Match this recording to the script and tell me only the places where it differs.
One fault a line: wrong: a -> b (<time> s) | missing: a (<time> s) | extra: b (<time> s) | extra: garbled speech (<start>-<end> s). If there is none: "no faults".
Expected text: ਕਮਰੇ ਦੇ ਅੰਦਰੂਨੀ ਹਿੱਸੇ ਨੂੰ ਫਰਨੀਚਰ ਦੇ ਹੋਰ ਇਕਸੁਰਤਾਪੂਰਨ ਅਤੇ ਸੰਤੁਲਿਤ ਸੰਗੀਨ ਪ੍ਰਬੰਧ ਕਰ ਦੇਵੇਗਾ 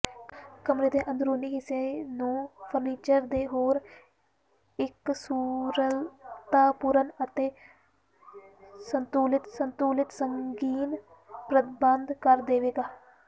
extra: ਸੰਤੁਲਿਤ (9.5 s)